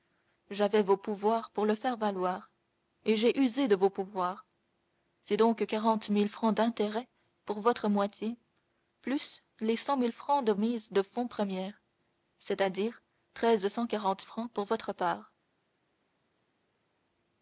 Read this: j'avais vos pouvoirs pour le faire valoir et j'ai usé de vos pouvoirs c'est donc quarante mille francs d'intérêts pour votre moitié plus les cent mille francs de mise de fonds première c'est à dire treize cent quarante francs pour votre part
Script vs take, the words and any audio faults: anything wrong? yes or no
no